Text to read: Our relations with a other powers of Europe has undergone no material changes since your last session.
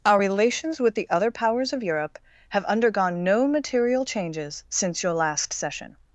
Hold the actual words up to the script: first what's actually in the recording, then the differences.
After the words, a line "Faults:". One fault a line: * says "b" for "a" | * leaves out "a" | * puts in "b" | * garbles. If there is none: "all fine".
Our relations with the other powers of Europe have undergone no material changes since your last session.
Faults:
* says "the" for "a"
* says "have" for "has"